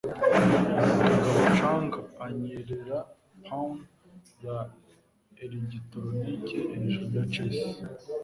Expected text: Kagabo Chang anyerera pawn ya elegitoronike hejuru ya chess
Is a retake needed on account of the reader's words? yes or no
no